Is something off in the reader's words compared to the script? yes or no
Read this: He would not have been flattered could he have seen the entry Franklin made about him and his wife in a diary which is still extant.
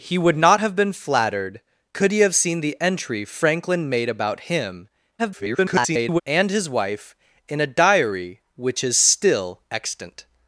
yes